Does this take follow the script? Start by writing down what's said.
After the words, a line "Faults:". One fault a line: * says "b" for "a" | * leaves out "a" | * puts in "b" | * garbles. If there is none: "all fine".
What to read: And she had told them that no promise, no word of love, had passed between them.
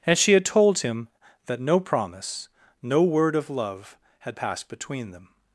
And she had told him that no promise, no word of love, had passed between them.
Faults:
* says "him" for "them"